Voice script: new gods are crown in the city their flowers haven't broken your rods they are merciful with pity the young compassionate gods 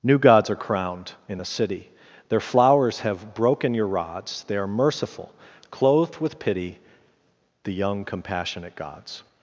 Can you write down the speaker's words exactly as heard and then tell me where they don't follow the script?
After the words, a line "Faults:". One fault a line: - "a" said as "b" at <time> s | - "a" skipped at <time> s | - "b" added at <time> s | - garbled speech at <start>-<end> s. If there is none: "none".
new gods are crowned in the city their flowers have broken your rods they are merciful clothed with pity the young compassionate gods
Faults:
- "crown" said as "crowned" at 0.6 s
- "haven't" said as "have" at 3.0 s
- "clothed" added at 5.7 s